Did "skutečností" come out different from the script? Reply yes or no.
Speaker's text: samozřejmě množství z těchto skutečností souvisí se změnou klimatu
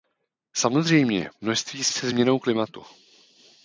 yes